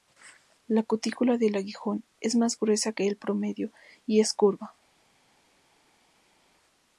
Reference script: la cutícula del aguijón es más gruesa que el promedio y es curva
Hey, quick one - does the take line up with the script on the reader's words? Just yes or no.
yes